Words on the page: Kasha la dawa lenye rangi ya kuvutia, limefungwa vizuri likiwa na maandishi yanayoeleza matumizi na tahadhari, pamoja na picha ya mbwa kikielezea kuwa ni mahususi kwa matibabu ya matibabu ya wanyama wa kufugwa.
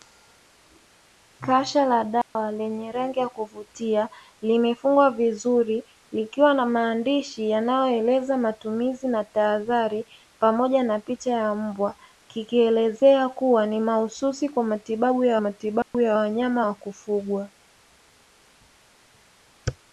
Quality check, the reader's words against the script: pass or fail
pass